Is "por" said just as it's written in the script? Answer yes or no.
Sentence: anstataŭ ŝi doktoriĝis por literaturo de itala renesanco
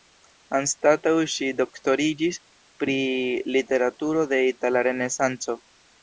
no